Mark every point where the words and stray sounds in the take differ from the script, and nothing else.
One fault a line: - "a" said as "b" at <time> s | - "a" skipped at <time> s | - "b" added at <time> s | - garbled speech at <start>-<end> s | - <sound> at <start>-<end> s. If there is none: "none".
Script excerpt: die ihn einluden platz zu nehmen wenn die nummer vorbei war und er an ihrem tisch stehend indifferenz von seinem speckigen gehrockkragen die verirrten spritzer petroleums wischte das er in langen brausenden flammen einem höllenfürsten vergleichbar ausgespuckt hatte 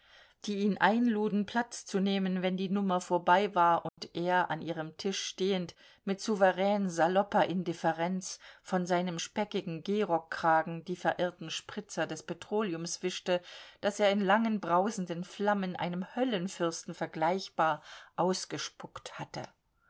- dropout at 3.9-4.0 s
- "mit souverän salopper" added at 6.0 s
- "des" added at 12.1 s